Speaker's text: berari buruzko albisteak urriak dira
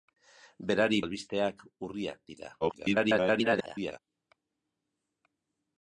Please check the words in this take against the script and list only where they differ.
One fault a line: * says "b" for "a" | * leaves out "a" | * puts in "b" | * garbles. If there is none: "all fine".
* leaves out "buruzko"
* garbles